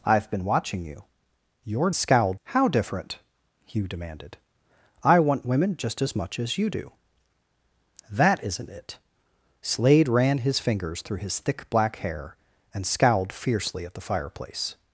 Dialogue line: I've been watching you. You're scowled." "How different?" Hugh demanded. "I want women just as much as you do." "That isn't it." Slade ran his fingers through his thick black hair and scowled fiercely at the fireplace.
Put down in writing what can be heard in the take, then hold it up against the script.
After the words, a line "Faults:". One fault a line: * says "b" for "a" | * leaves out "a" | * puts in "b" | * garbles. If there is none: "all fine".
I've been watching you. You're scowled." "How different?" Hugh demanded. "I want women just as much as you do." "That isn't it." Slade ran his fingers through his thick black hair and scowled fiercely at the fireplace.
Faults:
all fine